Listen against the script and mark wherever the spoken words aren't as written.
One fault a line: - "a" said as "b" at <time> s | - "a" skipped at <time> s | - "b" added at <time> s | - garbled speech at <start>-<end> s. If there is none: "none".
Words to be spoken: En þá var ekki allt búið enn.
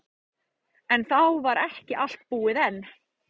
none